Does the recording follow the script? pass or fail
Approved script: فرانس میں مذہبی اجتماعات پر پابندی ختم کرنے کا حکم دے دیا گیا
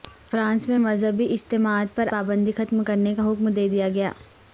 pass